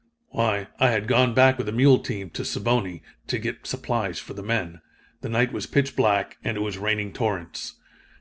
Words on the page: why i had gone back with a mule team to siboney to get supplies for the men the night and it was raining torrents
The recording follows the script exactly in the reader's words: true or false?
false